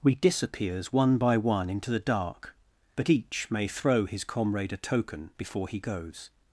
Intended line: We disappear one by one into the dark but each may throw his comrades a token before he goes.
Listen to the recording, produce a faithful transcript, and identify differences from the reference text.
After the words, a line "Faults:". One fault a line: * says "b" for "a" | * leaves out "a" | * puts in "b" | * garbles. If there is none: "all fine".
We disappears one by one into the dark but each may throw his comrade a token before he goes.
Faults:
* says "disappears" for "disappear"
* says "comrade" for "comrades"